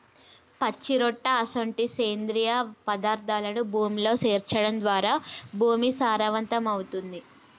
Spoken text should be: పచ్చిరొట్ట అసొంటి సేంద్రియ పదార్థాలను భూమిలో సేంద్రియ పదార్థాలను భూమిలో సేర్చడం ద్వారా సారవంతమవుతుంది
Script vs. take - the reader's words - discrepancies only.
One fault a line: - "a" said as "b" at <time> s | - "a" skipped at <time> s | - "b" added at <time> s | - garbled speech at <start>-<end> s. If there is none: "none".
- "సేంద్రియ పదార్థాలను భూమిలో" skipped at 4.1 s
- "భూమి" added at 5.6 s